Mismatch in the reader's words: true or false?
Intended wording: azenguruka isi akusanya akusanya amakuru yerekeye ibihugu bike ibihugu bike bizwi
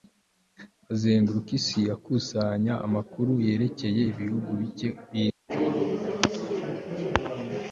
true